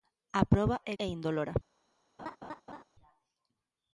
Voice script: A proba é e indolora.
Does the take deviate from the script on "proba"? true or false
false